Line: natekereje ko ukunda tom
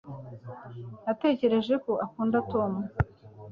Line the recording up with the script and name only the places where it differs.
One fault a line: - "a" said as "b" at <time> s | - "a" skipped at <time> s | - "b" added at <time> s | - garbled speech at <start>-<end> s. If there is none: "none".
none